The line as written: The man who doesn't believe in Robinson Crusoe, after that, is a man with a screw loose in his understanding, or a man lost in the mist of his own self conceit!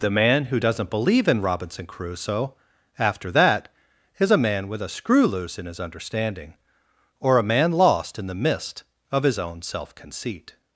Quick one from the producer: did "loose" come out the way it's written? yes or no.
yes